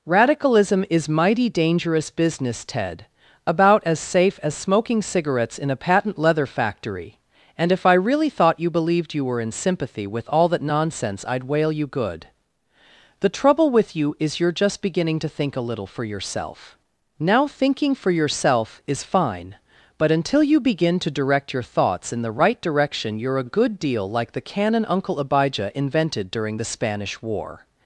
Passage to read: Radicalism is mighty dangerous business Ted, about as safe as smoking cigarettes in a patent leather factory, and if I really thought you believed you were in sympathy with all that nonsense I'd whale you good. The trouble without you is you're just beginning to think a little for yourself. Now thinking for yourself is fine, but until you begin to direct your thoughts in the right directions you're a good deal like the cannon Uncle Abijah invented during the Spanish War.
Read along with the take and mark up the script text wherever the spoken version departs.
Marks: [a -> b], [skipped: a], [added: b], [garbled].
Radicalism is mighty dangerous business Ted, about as safe as smoking cigarettes in a patent leather factory, and if I really thought you believed you were in sympathy with all that nonsense I'd whale you good. The trouble [without -> with] you is you're just beginning to think a little for yourself. Now thinking for yourself is fine, but until you begin to direct your thoughts in the right [directions -> direction] you're a good deal like the cannon Uncle Abijah invented during the Spanish War.